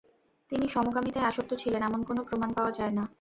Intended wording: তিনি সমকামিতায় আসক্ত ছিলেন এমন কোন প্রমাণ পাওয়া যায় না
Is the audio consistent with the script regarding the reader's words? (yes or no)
yes